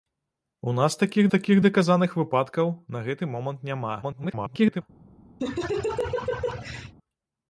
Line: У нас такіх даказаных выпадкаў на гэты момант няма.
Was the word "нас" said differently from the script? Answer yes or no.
no